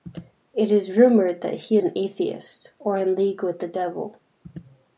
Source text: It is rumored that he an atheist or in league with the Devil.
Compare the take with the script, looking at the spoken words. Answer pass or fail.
pass